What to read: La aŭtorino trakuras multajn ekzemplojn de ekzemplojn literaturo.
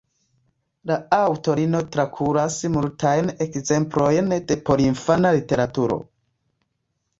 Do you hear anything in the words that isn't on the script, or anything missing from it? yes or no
yes